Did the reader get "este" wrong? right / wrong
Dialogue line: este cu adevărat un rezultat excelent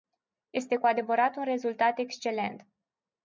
right